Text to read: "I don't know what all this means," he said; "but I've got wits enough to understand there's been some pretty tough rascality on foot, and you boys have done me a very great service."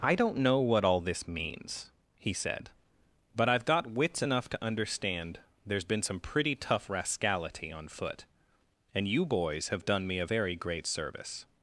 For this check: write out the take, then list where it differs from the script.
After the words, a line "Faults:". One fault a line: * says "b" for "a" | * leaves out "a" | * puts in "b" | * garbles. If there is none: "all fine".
"I don't know what all this means," he said; "but I've got wits enough to understand there's been some pretty tough rascality on foot, and you boys have done me a very great service."
Faults:
all fine